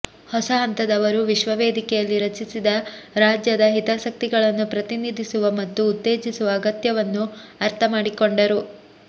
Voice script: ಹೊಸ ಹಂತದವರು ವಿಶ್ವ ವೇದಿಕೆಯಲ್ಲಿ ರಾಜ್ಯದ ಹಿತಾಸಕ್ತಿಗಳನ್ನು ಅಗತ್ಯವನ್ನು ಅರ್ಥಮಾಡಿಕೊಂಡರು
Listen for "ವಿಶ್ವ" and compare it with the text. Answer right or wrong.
right